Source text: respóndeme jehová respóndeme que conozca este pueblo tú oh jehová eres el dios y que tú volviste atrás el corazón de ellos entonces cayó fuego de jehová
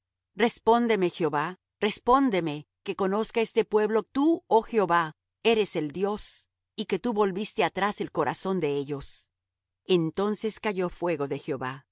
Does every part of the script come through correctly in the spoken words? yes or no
yes